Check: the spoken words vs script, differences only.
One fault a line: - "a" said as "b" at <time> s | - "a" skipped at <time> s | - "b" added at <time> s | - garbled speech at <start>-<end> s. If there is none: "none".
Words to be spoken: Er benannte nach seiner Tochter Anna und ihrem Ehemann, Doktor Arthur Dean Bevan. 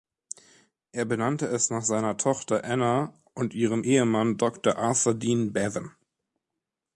- "es" added at 1.4 s